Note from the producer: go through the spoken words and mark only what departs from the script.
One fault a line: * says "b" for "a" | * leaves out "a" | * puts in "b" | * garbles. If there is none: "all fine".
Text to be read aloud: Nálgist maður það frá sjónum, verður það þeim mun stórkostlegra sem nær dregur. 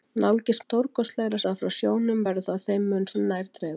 * says "stórkostlegra" for "maður"
* leaves out "stórkostlegra"